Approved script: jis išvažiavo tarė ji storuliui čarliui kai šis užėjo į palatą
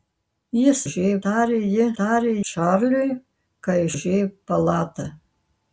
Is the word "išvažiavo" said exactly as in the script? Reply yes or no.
no